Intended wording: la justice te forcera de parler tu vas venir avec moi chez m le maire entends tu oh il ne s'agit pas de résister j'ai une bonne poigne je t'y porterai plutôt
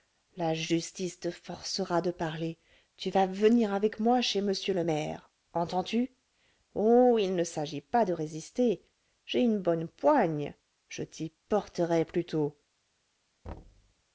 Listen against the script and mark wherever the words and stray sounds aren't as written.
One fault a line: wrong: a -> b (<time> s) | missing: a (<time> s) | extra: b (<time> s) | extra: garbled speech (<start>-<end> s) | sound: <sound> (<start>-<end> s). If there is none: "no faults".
sound: thud (13.4-13.9 s)